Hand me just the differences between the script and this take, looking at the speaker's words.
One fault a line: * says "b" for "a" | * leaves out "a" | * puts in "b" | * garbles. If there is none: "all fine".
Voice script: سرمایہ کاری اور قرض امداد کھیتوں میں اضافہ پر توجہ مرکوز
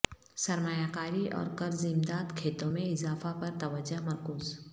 all fine